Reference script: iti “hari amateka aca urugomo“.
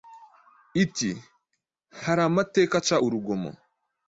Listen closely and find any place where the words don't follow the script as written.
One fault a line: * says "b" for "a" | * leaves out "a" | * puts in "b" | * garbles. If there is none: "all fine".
all fine